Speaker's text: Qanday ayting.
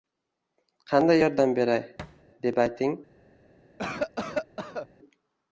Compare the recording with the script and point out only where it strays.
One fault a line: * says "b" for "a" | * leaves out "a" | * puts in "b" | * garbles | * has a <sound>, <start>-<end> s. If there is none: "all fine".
* puts in "yordam beray deb"
* has a thud, 2.0-2.2 s
* has a cough, 3.8-4.9 s